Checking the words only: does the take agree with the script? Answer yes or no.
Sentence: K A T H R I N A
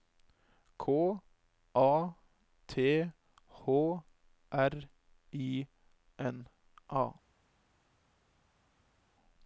yes